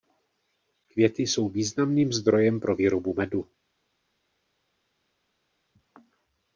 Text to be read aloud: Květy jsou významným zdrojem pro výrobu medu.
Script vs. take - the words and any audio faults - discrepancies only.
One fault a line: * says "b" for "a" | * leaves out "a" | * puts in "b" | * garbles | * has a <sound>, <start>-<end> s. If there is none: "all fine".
all fine